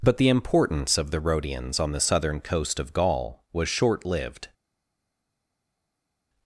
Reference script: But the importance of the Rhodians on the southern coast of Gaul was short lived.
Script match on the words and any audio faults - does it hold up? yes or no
yes